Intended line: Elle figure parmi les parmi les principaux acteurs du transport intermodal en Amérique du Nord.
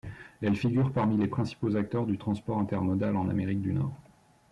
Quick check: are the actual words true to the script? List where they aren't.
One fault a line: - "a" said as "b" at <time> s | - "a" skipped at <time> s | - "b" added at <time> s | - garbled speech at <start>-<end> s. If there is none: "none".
- "parmi les" skipped at 1.3 s